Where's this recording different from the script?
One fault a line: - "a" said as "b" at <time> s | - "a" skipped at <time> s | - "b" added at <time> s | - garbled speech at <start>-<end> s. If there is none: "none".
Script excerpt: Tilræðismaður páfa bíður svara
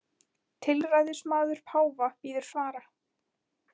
none